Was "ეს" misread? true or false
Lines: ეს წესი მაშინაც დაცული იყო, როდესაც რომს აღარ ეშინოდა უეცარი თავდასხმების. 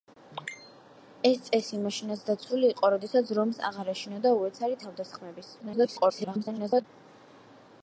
false